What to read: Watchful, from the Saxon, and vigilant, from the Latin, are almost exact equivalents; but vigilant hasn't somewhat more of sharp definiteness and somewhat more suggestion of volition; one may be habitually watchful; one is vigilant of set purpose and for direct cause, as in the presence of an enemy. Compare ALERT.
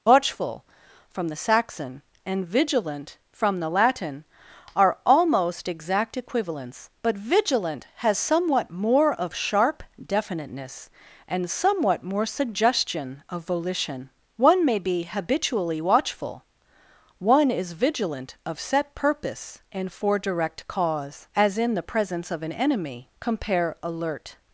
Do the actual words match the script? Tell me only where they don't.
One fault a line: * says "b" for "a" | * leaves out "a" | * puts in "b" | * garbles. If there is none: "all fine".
* says "has" for "hasn't"